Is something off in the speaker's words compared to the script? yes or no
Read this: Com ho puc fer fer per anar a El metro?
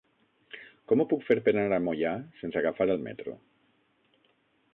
yes